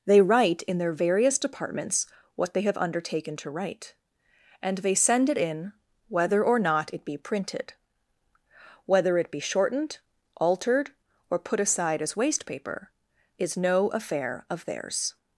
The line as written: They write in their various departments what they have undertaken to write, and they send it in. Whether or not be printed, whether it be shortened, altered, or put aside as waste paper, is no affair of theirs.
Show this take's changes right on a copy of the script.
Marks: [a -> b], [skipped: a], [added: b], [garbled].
They write in their various departments what they have undertaken to write, and they send it in. Whether or not [added: it] be printed, whether it be shortened, altered, or put aside as waste paper, is no affair of theirs.